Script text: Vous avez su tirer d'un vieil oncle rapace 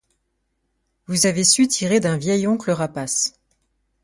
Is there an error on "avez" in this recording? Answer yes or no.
no